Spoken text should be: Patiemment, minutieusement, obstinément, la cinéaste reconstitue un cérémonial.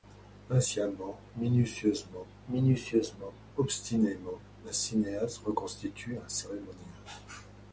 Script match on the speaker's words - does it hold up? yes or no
no